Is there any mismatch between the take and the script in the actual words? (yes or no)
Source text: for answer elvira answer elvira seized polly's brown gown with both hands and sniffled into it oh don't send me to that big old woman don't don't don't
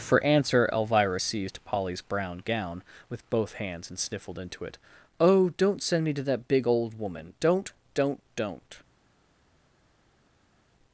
yes